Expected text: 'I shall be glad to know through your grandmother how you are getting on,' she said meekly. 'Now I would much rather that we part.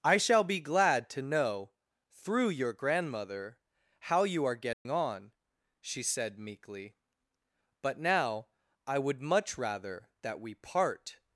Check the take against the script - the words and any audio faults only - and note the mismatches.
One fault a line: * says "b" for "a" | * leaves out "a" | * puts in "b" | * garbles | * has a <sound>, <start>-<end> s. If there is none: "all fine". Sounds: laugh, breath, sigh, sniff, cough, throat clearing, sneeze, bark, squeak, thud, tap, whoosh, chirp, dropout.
* has a dropout, 4.7-4.9 s
* puts in "But"